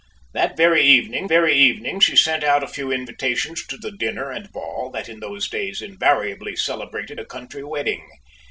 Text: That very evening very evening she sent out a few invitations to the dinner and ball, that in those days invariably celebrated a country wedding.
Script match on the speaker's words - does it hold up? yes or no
yes